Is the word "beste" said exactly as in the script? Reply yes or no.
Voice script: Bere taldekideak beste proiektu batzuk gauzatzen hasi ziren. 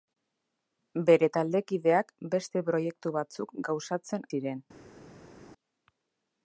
yes